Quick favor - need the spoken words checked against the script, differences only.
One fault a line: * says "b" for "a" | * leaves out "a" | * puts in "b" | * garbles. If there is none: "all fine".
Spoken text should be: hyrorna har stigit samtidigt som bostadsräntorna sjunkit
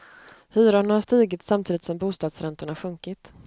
all fine